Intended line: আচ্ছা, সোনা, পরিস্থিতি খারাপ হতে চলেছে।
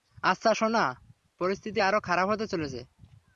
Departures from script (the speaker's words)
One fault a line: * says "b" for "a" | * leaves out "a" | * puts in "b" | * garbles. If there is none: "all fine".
* puts in "আরো"